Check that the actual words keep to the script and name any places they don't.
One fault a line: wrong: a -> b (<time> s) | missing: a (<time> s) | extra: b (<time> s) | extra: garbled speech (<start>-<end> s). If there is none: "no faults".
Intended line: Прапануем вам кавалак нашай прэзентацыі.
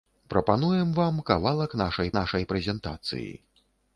extra: нашай (2.2 s)